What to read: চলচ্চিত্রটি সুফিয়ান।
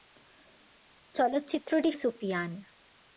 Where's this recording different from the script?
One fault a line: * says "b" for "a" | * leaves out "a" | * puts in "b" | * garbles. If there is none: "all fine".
all fine